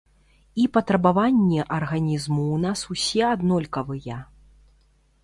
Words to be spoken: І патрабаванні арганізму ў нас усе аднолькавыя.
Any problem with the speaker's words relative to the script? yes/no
no